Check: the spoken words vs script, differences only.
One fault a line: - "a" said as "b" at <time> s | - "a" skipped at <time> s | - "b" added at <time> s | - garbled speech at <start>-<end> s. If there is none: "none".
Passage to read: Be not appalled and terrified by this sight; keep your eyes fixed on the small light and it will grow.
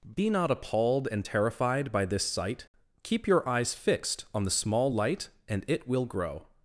none